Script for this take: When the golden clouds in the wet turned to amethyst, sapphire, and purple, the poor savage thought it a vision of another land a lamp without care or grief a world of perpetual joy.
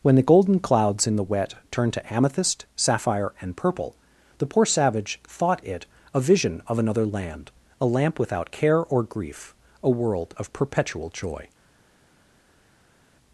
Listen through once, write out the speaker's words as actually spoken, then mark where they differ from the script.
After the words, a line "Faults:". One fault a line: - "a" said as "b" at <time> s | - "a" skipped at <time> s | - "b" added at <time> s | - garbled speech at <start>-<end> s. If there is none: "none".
When the golden clouds in the wet turned to amethyst, sapphire, and purple, the poor savage thought it a vision of another land a lamp without care or grief a world of perpetual joy.
Faults:
none